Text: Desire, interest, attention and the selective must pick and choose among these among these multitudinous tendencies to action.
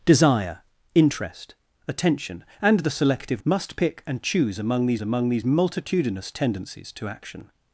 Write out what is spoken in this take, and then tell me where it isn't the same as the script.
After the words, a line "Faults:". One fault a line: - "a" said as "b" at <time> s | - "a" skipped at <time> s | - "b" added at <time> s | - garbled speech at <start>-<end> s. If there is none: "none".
Desire, interest, attention and the selective must pick and choose among these among these multitudinous tendencies to action.
Faults:
none